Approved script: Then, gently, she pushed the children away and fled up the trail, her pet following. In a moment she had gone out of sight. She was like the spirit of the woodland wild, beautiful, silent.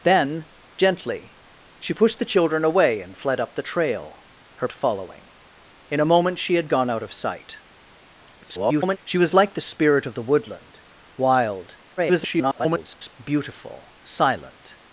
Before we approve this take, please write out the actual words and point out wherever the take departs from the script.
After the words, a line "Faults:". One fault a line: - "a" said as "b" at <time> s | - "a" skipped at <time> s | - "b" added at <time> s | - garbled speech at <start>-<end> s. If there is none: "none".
Then, gently, she pushed the children away and fled up the trail, her following. In a moment she had gone out of sight. [garbled] She was like the spirit of the woodland wild, [garbled] beautiful, silent.
Faults:
- "pet" skipped at 4.7 s
- garbled speech at 8.4-9.0 s
- garbled speech at 12.0-13.1 s